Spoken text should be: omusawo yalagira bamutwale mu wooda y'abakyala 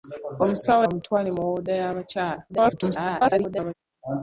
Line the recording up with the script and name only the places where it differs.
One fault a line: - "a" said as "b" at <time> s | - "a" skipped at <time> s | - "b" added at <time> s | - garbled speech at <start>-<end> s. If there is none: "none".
- "yalagira" skipped at 0.8 s
- garbled speech at 2.5-3.7 s